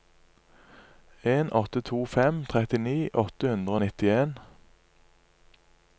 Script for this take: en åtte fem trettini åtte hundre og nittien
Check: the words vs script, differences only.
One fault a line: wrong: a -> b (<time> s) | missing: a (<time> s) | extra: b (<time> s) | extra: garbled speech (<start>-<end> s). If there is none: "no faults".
extra: to (1.9 s)